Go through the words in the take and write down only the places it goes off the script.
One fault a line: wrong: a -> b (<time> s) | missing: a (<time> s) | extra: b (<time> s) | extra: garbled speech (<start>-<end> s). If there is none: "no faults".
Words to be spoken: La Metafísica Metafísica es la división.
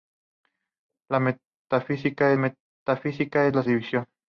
no faults